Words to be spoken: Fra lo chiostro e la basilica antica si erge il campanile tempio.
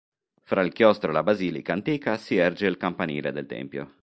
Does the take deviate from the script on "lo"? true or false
true